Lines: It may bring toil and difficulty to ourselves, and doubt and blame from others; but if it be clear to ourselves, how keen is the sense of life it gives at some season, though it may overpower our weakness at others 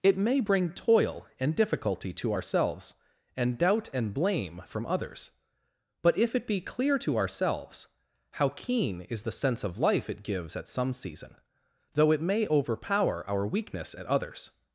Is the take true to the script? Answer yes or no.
yes